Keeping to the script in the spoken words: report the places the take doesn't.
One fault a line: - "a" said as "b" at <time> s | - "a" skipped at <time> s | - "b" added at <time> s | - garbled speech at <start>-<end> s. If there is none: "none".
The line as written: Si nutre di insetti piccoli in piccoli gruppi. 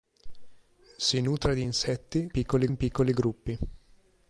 none